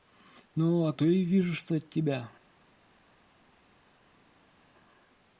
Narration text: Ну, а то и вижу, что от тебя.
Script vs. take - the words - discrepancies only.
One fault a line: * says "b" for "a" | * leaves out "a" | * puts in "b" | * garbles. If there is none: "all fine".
all fine